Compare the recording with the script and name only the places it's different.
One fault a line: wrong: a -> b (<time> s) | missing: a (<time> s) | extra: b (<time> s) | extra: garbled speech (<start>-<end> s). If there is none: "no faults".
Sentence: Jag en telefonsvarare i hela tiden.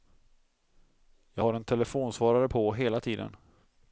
extra: har (1.4 s)
wrong: i -> på (2.4 s)